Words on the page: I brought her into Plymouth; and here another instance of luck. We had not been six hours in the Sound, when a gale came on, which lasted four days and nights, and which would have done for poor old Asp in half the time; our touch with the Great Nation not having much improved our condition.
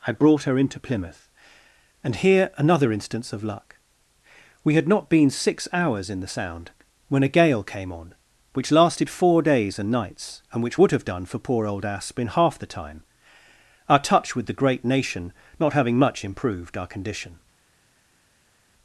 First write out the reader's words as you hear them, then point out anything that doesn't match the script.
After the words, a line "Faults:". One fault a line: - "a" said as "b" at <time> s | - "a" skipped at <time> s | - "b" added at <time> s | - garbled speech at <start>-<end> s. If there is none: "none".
I brought her into Plymouth; and here another instance of luck. We had not been six hours in the Sound, when a gale came on, which lasted four days and nights, and which would have done for poor old Asp in half the time; our touch with the Great Nation not having much improved our condition.
Faults:
none